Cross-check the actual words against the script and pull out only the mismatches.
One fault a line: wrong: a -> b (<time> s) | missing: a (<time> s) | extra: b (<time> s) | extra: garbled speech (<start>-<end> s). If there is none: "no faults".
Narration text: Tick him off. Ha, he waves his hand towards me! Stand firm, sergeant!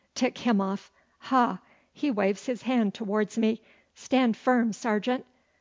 no faults